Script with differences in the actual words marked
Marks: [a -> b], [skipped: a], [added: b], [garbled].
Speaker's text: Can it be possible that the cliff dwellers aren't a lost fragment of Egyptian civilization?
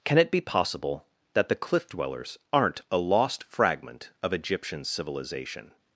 Can it be possible that the cliff dwellers aren't a lost fragment of Egyptian civilization?